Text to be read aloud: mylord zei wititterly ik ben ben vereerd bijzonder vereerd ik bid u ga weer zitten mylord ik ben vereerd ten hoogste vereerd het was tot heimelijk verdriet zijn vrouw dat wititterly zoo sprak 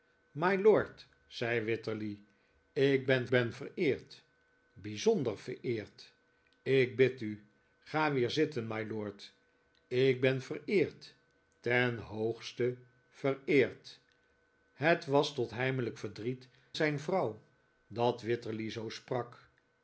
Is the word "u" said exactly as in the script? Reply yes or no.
yes